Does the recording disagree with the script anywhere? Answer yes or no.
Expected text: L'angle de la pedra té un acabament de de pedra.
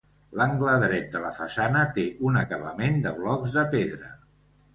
yes